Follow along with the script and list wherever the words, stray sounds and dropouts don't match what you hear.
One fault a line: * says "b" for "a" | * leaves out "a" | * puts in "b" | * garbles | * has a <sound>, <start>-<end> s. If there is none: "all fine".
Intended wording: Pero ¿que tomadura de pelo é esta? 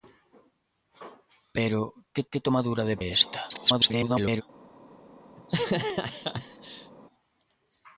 * puts in "que"
* leaves out "pelo"
* garbles
* has a laugh, 5.4-6.9 s